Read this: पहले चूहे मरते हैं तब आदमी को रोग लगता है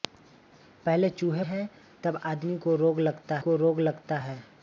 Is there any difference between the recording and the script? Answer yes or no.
yes